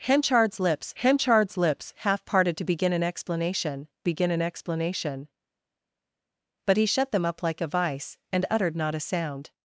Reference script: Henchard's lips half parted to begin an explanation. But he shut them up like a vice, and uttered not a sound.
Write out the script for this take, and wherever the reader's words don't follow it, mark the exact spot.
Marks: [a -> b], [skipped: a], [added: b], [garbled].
Henchard's lips [added: henchard's lips] half parted to begin an explanation. [added: begin an explanation] But he shut them up like a vice, and uttered not a sound.